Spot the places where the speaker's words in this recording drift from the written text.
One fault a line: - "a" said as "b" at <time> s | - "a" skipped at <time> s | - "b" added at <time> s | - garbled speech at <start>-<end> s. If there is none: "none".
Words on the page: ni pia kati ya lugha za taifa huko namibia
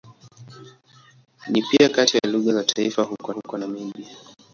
- "huko" added at 3.3 s